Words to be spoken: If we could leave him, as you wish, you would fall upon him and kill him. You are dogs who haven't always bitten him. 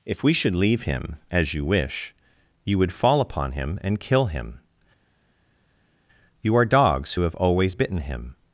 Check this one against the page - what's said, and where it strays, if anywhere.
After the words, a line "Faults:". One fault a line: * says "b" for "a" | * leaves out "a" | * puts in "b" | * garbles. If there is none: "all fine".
If we should leave him, as you wish, you would fall upon him and kill him. You are dogs who have always bitten him.
Faults:
* says "should" for "could"
* says "have" for "haven't"